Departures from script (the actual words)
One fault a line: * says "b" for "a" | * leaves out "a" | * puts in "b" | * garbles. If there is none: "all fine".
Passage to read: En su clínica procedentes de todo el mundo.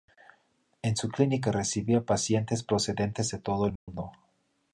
* puts in "recibía pacientes"